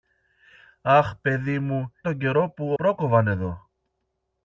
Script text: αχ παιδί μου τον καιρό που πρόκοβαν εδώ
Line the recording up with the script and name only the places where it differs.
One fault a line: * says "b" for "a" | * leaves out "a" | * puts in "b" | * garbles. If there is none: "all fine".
all fine